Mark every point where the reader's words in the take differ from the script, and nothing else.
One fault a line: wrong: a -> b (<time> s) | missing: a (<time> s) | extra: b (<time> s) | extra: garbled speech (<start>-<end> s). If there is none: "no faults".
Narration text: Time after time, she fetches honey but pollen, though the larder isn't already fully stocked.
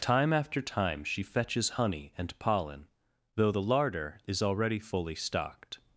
wrong: but -> and (2.2 s)
wrong: isn't -> is (4.3 s)